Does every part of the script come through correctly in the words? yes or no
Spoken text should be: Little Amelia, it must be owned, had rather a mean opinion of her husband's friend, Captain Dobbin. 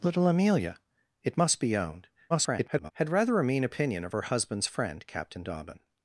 no